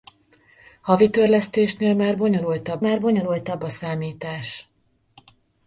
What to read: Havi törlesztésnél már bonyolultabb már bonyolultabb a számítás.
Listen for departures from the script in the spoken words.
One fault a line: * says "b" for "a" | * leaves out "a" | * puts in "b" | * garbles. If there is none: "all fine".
all fine